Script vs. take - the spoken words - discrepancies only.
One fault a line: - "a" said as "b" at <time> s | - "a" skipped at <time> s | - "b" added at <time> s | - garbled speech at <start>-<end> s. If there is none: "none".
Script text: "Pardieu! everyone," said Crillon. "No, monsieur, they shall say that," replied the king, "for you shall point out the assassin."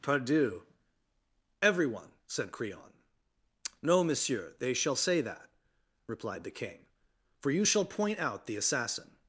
none